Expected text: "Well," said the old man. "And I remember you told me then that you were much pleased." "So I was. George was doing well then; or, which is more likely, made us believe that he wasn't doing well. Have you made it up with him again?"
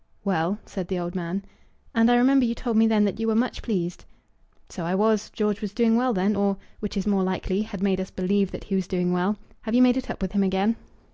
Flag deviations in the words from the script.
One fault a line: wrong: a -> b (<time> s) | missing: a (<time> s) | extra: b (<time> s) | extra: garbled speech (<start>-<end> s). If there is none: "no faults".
extra: had (7.6 s)
wrong: wasn't -> was (8.8 s)